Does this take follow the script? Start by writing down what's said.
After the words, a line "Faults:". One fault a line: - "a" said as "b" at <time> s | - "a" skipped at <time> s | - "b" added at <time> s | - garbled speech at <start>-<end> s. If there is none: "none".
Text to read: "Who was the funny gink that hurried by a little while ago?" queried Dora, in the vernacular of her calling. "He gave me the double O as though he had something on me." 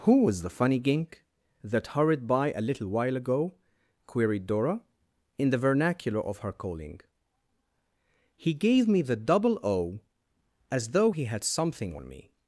"Who was the funny gink that hurried by a little while ago?" queried Dora, in the vernacular of her calling. "He gave me the double O as though he had something on me."
Faults:
none